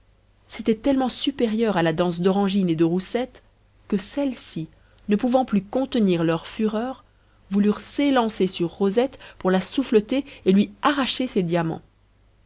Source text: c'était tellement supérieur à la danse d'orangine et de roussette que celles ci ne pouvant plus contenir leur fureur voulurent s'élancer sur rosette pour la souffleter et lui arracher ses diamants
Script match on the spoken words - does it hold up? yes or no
yes